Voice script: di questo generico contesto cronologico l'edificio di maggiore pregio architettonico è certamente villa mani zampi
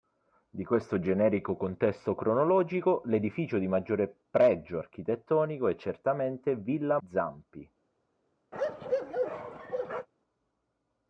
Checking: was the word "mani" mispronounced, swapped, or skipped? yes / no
yes